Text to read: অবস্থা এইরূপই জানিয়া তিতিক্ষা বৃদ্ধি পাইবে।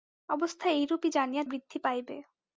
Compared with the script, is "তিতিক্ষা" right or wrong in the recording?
wrong